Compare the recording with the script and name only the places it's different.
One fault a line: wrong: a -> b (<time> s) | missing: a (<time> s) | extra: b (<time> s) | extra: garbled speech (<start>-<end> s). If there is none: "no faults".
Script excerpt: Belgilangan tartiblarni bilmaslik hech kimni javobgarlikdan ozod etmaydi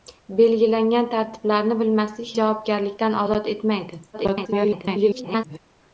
missing: hech kimni (2.3 s)
extra: garbled speech (4.1-5.6 s)